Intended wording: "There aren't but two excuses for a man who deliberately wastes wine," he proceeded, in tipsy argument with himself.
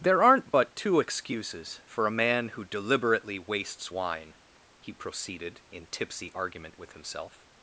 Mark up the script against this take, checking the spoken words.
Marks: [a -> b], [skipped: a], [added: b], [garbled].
"There aren't but two excuses for a man who deliberately wastes wine," he proceeded, in tipsy argument with himself.